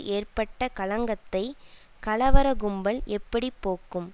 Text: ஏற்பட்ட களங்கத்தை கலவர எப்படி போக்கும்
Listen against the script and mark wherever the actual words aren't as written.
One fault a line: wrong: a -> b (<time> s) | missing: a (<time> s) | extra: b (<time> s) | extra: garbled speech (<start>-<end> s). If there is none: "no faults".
extra: கும்பல் (2.5 s)